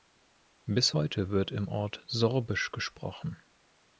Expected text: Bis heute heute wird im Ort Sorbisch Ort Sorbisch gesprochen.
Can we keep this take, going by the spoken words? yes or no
no